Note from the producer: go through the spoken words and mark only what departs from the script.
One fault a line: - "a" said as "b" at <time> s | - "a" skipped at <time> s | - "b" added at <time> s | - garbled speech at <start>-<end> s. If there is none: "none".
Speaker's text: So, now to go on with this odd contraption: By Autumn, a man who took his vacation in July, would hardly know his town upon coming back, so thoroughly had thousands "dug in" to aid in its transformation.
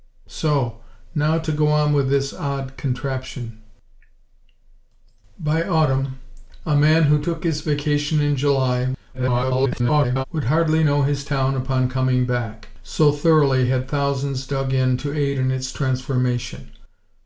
- garbled speech at 9.1-10.2 s